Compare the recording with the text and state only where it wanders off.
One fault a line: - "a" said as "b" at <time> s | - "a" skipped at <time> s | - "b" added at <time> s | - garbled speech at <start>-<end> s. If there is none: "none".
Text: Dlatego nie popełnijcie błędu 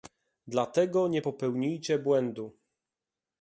none